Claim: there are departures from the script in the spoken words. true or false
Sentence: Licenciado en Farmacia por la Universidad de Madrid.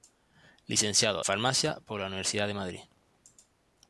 true